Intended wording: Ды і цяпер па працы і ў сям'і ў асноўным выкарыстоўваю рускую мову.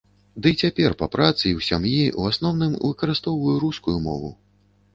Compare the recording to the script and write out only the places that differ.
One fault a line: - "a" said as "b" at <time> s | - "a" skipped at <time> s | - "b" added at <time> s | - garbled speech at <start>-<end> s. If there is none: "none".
none